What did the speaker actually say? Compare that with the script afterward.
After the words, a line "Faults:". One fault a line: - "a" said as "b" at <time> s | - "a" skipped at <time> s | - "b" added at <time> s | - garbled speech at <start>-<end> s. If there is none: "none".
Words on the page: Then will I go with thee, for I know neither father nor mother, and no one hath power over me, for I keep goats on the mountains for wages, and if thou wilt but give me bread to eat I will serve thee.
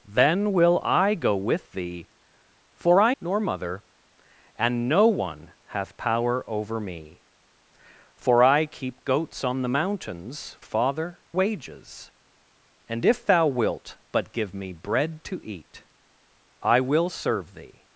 Then will I go with thee, for I nor mother, and no one hath power over me, for I keep goats on the mountains father wages, and if thou wilt but give me bread to eat I will serve thee.
Faults:
- "know neither father" skipped at 3.1 s
- "for" said as "father" at 10.6 s